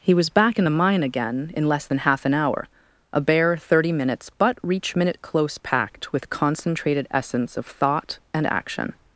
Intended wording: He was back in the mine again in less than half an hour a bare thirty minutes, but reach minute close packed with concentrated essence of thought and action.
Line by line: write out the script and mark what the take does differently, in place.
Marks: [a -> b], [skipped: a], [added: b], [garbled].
He was back in the mine again in less than half an hour a bare thirty minutes, but reach minute close packed with concentrated essence of thought and action.